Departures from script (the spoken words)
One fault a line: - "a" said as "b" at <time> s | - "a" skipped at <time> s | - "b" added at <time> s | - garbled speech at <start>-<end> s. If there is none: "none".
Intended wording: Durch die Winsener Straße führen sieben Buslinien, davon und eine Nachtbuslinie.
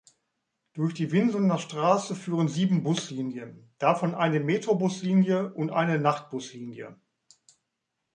- "eine Metrobuslinie" added at 4.2 s